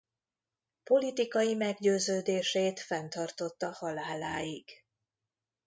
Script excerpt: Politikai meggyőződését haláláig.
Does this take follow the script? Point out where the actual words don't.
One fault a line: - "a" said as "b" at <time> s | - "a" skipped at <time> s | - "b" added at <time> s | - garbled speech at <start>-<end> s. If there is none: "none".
- "fenntartotta" added at 2.8 s